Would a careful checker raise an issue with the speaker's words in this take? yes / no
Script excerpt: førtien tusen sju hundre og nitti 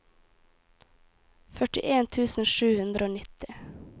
no